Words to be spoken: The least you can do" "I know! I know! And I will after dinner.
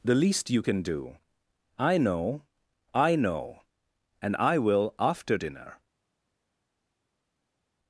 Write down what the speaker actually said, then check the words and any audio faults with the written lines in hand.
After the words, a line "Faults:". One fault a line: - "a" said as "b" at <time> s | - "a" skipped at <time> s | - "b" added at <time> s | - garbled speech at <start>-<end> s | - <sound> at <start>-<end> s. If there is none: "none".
The least you can do" "I know! I know! And I will after dinner.
Faults:
none